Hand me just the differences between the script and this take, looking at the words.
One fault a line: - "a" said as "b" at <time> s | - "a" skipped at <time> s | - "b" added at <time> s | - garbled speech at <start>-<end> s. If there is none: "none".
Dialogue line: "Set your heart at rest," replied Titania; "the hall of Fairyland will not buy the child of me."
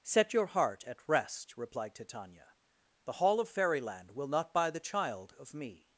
none